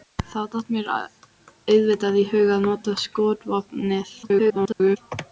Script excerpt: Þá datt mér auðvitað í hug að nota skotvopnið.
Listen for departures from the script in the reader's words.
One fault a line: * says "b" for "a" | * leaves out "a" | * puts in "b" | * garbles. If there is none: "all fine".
* garbles